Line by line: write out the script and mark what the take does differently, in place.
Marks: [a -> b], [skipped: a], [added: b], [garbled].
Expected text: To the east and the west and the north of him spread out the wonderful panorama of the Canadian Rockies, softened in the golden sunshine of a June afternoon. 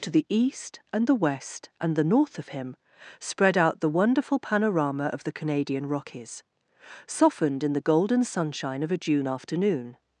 To the east and the west and the north of him spread out the wonderful panorama of the Canadian Rockies, softened in the golden sunshine of a June afternoon.